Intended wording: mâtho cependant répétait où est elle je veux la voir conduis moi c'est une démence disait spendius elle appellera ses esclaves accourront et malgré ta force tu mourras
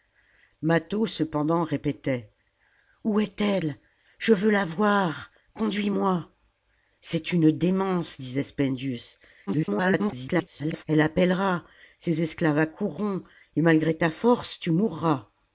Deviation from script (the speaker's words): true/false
true